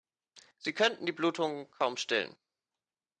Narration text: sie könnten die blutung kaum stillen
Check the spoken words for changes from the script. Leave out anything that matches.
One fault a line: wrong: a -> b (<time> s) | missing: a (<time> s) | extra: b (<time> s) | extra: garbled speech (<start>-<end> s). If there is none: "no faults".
no faults